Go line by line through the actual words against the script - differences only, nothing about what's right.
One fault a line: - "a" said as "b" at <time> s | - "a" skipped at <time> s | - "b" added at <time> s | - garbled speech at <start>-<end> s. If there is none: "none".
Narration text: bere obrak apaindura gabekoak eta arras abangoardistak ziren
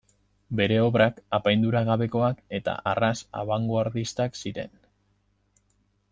none